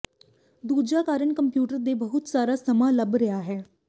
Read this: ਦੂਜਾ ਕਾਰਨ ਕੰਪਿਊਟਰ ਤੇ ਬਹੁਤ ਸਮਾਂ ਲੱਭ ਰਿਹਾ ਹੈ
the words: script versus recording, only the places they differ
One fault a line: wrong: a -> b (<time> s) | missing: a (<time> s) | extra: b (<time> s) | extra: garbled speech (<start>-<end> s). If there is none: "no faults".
extra: ਸਾਰਾ (2.3 s)